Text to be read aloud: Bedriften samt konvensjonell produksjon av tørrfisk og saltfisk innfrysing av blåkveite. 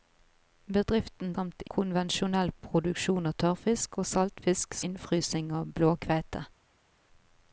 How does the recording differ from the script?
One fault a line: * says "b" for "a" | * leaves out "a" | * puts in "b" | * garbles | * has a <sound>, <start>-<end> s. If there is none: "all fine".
all fine